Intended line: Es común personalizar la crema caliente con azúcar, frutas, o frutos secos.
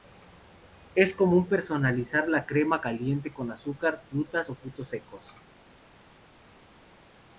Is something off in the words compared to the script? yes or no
no